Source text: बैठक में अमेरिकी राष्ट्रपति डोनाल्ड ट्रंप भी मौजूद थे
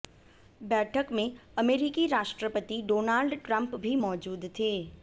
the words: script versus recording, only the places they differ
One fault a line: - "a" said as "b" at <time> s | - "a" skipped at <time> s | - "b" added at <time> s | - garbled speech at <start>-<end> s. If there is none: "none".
none